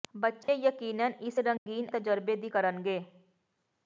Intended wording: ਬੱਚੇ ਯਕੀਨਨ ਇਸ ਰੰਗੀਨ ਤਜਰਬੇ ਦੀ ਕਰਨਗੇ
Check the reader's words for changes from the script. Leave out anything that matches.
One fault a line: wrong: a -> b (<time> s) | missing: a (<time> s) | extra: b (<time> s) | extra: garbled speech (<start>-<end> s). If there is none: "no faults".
no faults